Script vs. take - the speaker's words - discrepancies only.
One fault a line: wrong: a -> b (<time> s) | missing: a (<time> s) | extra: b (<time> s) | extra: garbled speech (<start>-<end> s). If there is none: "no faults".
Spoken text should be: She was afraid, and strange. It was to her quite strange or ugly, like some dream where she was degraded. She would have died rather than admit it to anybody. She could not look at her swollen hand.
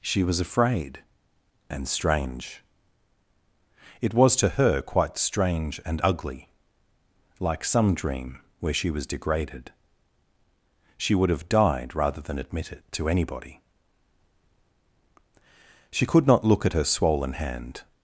wrong: or -> and (5.8 s)